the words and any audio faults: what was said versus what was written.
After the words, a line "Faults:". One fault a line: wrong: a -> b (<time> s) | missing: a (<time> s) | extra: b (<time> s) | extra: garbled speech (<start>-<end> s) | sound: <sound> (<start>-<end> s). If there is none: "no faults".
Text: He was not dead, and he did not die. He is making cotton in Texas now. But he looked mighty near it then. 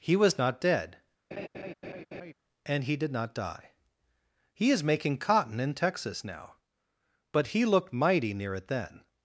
He was not dead, and he did not die. He is making cotton in Texas now. But he looked mighty near it then.
Faults:
sound: laugh (1.3-2.3 s)